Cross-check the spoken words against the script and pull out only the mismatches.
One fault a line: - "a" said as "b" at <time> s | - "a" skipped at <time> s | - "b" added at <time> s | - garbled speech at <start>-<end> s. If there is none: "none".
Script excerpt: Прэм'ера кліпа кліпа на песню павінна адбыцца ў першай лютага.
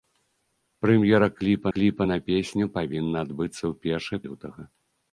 none